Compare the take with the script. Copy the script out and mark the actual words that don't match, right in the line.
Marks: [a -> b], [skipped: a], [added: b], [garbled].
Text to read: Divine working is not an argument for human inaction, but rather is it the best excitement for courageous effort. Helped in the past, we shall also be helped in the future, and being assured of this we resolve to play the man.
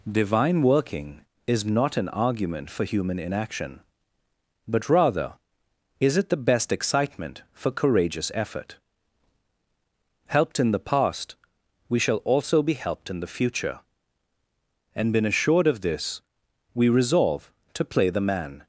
Divine working is not an argument for human inaction, but rather is it the best excitement for courageous effort. Helped in the past, we shall also be helped in the future, and [being -> been] assured of this we resolve to play the man.